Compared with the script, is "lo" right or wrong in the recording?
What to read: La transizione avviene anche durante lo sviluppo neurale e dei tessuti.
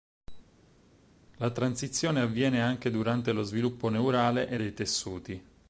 right